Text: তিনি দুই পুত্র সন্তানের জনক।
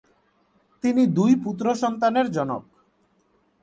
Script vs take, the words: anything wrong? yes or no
no